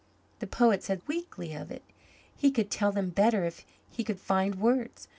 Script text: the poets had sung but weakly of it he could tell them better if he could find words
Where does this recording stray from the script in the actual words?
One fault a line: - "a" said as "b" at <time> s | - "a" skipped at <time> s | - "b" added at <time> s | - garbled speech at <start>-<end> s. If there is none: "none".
- "sung but" skipped at 1.0 s